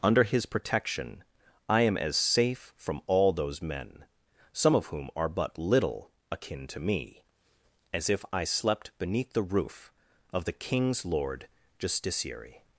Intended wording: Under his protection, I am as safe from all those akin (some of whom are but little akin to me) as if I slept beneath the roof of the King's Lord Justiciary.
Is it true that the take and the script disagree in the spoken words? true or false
true